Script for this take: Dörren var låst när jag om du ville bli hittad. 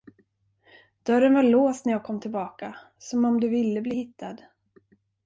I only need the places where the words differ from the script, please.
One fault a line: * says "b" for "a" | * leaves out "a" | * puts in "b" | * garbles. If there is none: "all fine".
* puts in "kom tillbaka som"